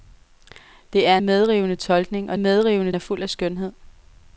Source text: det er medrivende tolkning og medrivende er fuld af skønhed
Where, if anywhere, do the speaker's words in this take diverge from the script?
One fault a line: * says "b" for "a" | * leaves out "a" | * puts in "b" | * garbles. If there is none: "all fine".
all fine